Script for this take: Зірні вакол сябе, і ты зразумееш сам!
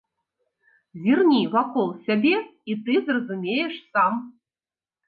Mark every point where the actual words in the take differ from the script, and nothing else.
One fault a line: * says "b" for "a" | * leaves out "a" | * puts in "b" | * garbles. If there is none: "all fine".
all fine